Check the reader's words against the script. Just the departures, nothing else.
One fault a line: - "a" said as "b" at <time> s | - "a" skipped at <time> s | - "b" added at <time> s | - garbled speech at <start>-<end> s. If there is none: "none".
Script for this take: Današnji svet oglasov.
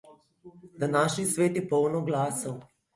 - "je poln" added at 1.6 s